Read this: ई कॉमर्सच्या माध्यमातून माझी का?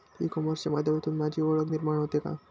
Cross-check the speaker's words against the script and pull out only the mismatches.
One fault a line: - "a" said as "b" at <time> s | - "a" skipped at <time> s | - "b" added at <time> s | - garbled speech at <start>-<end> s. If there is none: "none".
- "ओळख निर्माण होते" added at 1.4 s